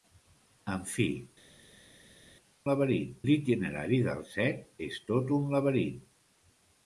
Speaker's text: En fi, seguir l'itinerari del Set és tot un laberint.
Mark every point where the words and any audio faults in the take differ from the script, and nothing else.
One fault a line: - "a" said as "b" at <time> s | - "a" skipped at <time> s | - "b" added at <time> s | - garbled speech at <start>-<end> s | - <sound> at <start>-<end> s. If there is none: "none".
- "seguir" said as "laberint" at 2.7 s